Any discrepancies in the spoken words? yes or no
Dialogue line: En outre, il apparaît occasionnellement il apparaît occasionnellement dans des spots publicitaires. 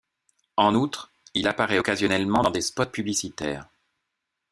yes